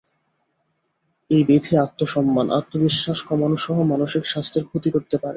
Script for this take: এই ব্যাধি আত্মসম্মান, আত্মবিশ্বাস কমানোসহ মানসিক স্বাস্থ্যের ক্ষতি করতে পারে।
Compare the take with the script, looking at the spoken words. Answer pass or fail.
pass